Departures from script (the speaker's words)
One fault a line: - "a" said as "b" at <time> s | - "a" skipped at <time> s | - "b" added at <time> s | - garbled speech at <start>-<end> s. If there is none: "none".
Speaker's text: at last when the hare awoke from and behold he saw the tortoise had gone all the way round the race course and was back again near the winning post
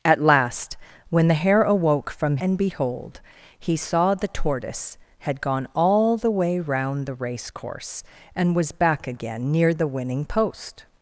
none